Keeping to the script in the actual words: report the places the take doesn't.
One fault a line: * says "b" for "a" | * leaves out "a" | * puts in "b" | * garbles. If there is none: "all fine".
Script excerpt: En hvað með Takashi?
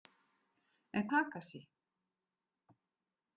* leaves out "hvað með"